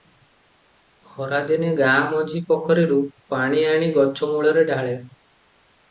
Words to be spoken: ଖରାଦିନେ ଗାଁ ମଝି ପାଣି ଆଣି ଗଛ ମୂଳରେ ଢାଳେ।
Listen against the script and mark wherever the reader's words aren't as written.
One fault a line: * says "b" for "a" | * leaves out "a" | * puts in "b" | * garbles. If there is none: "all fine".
* puts in "ପୋଖରୀରୁ"